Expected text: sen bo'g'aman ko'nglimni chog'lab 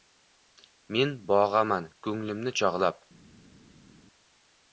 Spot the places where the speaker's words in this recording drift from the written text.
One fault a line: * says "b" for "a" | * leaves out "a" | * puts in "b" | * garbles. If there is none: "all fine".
* says "men" for "sen"